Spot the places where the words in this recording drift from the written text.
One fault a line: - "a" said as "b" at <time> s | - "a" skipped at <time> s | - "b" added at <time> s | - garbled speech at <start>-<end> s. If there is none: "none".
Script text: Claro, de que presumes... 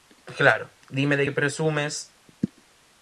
- "dime" added at 0.9 s